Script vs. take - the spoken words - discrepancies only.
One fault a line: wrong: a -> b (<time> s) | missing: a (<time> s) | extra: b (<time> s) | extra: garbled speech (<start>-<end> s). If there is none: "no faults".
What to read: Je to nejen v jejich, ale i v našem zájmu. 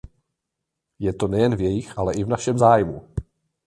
no faults